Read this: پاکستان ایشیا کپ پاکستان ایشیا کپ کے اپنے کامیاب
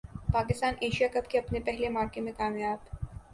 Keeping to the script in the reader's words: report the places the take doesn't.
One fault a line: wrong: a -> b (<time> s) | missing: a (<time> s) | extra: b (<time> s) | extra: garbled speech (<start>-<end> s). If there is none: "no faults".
wrong: پاکستان ایشیا کپ کے اپنے -> کے اپنے پہلے معرکے میں (1.3 s)